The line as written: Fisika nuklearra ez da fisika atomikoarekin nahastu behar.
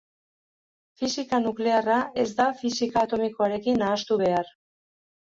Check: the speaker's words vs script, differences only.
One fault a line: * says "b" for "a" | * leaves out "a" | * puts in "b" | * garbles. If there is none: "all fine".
all fine